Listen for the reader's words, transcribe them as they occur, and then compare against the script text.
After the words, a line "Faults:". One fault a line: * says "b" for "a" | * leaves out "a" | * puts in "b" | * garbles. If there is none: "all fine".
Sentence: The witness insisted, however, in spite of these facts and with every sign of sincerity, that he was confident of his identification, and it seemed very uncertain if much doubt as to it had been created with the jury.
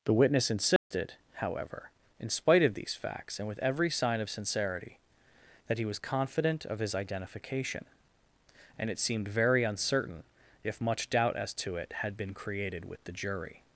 The witness insisted, however, in spite of these facts and with every sign of sincerity, that he was confident of his identification, and it seemed very uncertain if much doubt as to it had been created with the jury.
Faults:
all fine